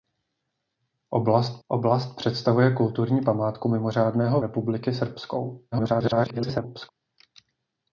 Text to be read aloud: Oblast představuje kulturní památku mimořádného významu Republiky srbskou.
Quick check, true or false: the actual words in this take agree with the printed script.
false